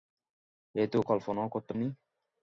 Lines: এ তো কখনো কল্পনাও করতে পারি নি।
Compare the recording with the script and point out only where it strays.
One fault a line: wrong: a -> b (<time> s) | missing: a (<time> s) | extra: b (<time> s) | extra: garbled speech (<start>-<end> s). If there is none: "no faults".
missing: কখনো (1.0 s)
missing: পারি (1.7 s)